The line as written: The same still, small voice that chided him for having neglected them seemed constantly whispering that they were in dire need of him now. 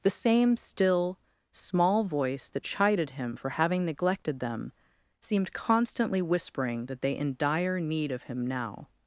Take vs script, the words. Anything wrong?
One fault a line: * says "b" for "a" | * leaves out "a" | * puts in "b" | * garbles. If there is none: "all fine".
* leaves out "were"